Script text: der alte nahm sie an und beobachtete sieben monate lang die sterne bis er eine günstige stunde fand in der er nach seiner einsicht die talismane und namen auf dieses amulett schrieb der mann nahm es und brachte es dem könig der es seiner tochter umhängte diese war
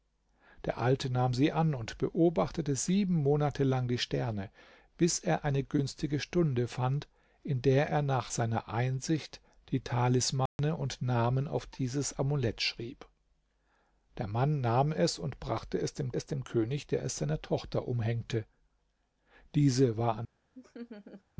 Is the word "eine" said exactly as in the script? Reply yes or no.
yes